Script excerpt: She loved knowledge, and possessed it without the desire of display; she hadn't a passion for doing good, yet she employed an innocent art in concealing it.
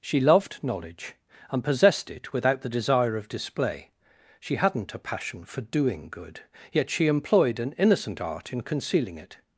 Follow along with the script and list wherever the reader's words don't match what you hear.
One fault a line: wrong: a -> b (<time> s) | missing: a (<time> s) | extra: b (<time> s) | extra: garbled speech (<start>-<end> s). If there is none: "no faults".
no faults